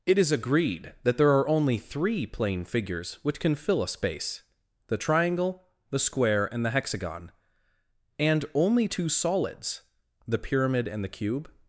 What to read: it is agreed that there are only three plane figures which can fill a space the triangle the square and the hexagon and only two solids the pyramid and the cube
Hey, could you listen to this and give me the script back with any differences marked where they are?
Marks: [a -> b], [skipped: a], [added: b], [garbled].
it is agreed that there are only three plane figures which can fill a space the triangle the square and the hexagon and only two solids the pyramid and the cube